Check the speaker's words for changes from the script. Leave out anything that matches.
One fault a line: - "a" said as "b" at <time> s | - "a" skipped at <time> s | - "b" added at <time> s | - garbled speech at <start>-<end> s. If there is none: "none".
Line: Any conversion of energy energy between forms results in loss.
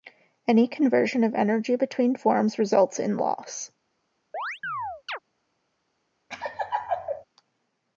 - "energy" skipped at 1.8 s